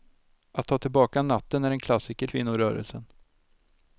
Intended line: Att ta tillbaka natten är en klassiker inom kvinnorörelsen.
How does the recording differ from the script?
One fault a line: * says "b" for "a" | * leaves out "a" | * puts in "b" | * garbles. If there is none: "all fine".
* leaves out "inom"